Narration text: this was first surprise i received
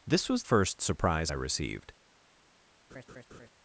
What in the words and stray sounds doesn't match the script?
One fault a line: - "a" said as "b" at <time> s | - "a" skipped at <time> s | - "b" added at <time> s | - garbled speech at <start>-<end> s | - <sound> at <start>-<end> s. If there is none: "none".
- laugh at 2.9-3.5 s